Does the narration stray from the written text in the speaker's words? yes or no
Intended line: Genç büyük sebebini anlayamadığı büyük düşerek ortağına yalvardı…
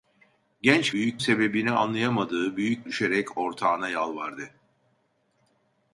no